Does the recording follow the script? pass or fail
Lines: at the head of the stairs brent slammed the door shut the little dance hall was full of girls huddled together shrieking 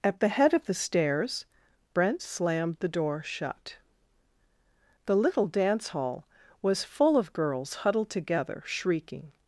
pass